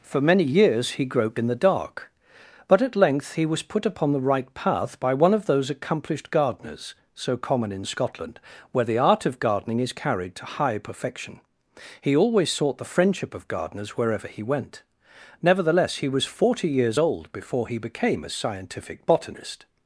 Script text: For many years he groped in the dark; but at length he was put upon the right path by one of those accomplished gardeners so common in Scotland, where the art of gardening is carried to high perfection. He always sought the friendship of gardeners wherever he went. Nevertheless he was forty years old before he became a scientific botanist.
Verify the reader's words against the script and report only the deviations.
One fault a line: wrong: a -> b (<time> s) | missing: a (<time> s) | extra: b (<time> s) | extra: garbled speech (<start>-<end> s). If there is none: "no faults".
no faults